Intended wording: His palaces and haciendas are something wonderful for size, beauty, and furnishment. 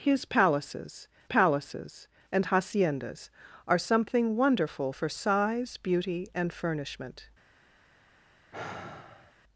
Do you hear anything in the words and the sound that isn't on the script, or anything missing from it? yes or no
yes